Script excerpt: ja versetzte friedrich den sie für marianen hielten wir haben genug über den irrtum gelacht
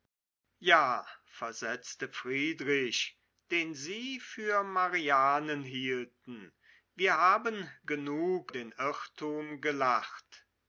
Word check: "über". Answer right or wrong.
wrong